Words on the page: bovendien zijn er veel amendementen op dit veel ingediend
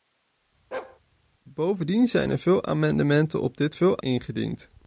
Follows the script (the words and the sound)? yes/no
no